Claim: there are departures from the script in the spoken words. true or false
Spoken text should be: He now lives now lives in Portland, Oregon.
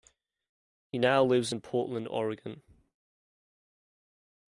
true